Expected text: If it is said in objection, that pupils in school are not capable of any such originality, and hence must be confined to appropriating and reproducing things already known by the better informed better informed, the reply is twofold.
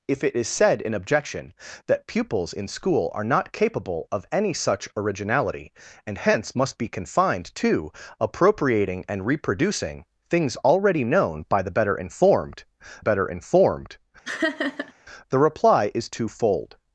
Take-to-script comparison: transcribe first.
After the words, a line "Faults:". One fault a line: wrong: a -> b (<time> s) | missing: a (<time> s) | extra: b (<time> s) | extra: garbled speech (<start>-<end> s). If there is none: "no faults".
If it is said in objection, that pupils in school are not capable of any such originality, and hence must be confined to appropriating and reproducing things already known by the better informed better informed, the reply is twofold.
Faults:
no faults